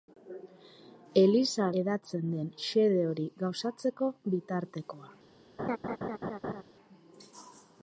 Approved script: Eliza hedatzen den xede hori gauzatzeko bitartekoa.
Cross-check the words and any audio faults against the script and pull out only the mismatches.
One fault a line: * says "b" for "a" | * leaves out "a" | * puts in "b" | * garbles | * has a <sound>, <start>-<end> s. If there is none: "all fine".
* has a laugh, 5.6-6.6 s